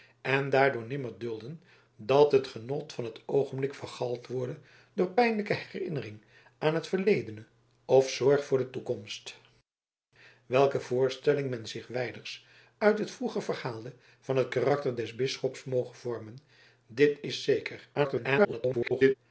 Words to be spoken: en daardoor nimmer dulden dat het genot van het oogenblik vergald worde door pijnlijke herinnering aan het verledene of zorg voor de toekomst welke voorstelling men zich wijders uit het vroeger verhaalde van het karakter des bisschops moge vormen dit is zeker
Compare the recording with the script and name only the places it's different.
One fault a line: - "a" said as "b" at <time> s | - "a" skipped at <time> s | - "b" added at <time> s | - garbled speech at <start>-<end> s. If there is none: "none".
- garbled speech at 17.9-19.1 s